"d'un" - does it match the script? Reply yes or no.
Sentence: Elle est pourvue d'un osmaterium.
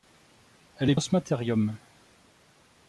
no